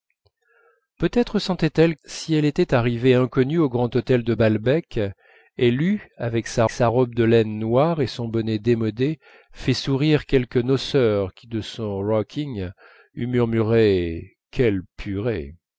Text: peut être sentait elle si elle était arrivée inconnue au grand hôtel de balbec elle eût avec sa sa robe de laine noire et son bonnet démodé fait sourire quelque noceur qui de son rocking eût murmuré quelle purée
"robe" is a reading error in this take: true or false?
false